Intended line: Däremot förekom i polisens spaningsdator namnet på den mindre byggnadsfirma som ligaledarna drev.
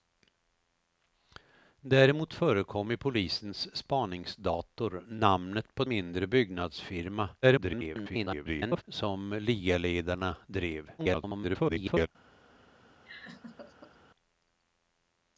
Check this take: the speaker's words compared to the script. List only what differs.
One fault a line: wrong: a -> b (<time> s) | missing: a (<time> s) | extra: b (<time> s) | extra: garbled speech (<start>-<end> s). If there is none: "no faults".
missing: den (5.8 s)
extra: garbled speech (7.4-8.8 s)
extra: garbled speech (11.0-12.1 s)